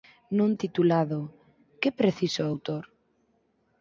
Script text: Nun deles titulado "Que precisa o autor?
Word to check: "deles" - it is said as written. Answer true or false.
false